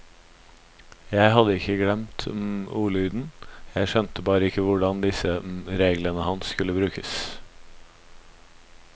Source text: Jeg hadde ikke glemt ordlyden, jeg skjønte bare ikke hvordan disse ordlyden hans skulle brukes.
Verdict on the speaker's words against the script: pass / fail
fail